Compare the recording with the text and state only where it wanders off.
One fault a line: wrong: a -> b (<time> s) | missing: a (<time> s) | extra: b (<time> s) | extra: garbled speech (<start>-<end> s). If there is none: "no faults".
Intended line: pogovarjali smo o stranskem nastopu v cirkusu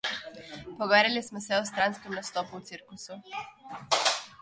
extra: se (1.4 s)